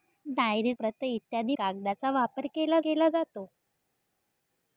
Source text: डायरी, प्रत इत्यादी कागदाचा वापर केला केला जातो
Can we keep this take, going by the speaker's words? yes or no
yes